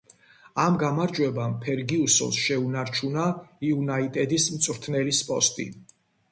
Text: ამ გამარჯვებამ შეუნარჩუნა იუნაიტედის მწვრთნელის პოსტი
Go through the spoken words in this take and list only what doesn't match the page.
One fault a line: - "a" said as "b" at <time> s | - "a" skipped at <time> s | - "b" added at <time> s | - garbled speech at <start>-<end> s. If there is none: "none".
- "ფერგიუსონს" added at 1.6 s